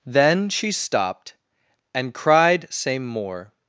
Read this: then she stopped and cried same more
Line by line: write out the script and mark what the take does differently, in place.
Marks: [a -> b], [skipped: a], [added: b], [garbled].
then she stopped and cried same more